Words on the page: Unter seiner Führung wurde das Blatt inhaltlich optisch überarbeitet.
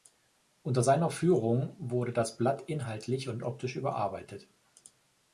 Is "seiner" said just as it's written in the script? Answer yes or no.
yes